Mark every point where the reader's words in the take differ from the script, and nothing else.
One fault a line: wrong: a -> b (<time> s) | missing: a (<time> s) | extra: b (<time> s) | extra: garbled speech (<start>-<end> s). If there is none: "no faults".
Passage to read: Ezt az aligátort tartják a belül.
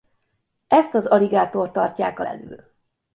no faults